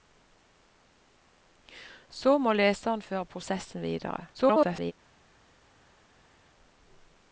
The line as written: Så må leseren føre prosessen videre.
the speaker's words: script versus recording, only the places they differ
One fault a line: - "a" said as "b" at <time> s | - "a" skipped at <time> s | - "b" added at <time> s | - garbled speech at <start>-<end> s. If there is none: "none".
- garbled speech at 4.3-4.9 s